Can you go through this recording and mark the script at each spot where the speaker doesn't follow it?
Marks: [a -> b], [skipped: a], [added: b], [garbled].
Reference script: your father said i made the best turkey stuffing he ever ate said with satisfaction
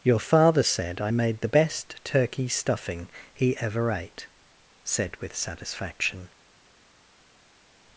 your father said i made the best turkey stuffing he ever ate said with satisfaction